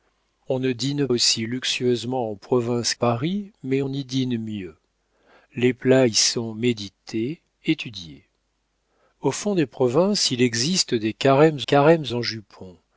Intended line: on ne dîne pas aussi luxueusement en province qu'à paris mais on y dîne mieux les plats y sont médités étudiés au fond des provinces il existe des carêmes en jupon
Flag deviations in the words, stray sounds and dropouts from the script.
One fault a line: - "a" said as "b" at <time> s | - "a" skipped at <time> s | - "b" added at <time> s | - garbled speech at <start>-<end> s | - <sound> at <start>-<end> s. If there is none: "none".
- "pas" skipped at 1.1 s
- "qu'à" skipped at 2.9 s
- "carêmes" added at 11.6 s